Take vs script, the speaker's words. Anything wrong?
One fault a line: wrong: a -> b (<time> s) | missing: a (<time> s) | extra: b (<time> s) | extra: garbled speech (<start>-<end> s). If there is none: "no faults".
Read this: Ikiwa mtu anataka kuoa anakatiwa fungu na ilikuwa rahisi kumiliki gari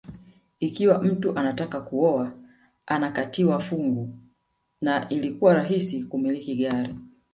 no faults